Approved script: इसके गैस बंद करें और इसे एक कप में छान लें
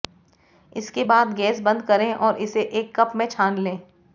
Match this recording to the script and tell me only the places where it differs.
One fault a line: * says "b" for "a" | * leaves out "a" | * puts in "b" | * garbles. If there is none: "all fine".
* puts in "बाद"